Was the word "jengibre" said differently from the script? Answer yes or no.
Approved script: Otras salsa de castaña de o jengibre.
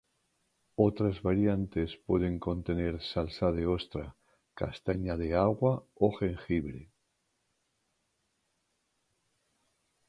no